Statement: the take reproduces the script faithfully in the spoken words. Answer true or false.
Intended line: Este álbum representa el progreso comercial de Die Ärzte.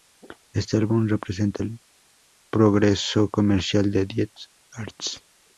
true